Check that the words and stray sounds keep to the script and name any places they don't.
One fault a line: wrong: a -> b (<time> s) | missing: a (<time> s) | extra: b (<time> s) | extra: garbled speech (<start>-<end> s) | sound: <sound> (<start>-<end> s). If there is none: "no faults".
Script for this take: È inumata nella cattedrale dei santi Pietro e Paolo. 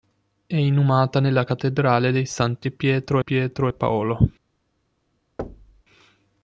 extra: Pietro (3.2 s)
sound: thud (5.4-5.8 s)